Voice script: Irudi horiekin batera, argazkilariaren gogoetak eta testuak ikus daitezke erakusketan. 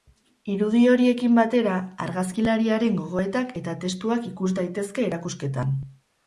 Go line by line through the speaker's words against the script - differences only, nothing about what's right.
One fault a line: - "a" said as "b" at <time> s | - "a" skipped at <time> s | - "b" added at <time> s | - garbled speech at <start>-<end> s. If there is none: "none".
none